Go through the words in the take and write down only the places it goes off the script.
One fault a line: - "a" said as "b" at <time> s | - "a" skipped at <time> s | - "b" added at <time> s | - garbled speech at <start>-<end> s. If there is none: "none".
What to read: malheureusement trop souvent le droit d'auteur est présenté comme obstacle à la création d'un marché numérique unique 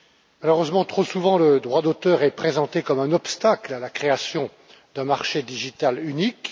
- "un" added at 3.0 s